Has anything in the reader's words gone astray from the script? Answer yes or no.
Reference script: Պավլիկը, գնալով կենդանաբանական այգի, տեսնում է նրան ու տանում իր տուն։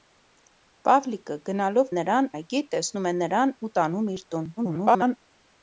yes